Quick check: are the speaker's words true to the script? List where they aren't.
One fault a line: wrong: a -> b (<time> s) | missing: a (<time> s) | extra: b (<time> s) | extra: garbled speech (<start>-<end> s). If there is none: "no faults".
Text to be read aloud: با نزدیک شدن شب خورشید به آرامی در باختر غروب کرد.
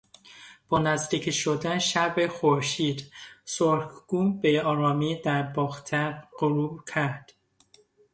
extra: سرخگون (3.5 s)